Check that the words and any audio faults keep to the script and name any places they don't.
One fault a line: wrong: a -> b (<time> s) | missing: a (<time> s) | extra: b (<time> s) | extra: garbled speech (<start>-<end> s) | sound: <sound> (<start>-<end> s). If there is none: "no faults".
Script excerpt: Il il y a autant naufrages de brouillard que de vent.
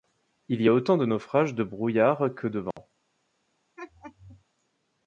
missing: il (0.6 s)
extra: de (0.9 s)
sound: dropout (2.7-2.8 s)
sound: laugh (3.8-4.4 s)